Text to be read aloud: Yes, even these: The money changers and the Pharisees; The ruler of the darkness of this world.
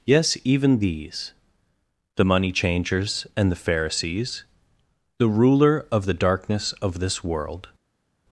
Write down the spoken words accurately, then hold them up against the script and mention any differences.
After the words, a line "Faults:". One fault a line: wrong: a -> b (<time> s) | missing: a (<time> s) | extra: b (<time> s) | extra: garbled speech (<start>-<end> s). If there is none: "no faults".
Yes, even these: The money changers and the Pharisees; The ruler of the darkness of this world.
Faults:
no faults